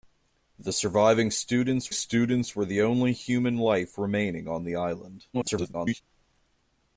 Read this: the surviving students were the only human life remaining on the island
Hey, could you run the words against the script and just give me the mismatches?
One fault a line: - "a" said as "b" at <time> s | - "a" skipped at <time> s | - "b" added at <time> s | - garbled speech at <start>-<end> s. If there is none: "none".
- "students" added at 1.9 s
- garbled speech at 5.3-6.0 s